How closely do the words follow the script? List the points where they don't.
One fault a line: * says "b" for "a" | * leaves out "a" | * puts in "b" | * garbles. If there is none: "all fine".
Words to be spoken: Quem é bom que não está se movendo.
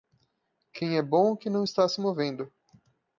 all fine